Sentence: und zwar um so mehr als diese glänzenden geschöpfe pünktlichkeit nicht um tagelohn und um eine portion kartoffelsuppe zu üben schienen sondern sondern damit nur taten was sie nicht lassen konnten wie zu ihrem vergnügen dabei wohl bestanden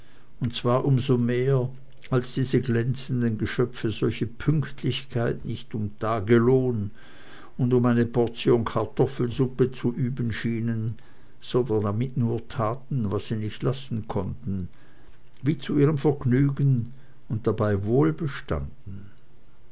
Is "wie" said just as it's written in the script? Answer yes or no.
yes